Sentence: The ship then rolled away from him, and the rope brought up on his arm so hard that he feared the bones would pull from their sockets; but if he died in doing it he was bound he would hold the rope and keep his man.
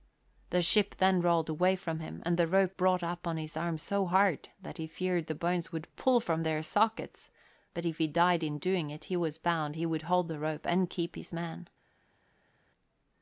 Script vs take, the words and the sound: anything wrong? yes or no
no